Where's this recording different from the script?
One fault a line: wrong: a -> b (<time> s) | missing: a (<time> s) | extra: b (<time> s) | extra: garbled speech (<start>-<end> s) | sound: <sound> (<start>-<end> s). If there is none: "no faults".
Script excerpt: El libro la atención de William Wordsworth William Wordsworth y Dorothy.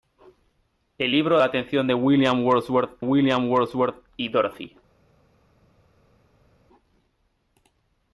no faults